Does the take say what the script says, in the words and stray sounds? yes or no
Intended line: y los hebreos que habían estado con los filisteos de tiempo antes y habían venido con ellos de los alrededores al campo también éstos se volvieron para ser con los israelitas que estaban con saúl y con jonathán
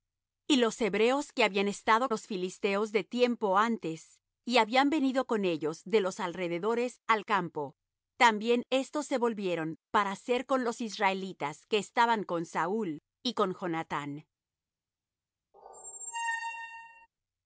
no